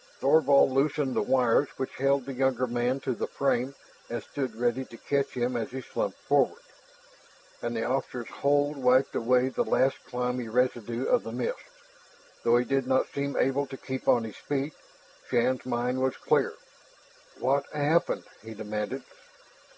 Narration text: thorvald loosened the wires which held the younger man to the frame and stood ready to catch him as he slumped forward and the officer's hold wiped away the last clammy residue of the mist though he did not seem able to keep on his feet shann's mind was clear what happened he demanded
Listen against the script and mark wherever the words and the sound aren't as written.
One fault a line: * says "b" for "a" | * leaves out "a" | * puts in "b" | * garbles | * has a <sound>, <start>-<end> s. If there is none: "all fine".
all fine